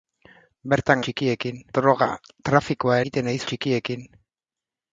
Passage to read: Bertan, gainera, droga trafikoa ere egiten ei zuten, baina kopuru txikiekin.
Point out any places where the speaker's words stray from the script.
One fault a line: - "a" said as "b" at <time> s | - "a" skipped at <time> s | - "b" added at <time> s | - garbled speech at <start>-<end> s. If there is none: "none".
- "gainera" said as "txikiekin" at 1.1 s
- "ere" skipped at 3.0 s
- "zuten baina kopuru" skipped at 3.4 s